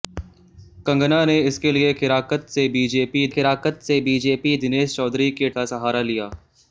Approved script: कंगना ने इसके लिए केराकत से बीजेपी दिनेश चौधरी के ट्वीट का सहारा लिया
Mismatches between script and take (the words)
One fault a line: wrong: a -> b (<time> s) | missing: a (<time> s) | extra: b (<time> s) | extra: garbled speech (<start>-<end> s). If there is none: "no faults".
extra: केराकत से बीजेपी (3.3 s)
missing: ट्वीट (5.5 s)